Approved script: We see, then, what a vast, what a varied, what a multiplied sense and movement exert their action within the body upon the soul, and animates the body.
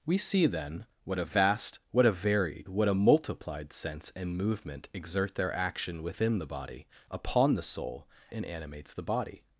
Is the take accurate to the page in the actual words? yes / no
yes